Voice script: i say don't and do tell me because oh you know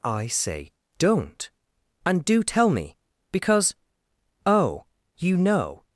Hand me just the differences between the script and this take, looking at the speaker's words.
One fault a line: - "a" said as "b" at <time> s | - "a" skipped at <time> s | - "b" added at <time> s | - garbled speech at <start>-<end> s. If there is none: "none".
none